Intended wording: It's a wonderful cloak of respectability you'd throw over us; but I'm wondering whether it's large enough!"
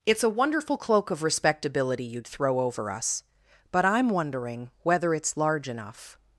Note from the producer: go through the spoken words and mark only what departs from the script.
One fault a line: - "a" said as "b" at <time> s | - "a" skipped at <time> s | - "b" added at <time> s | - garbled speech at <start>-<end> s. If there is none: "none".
none